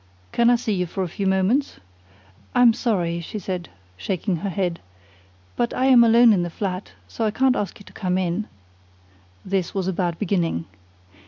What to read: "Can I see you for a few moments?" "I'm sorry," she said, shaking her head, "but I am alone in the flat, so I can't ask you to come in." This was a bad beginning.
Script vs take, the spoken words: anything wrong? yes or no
no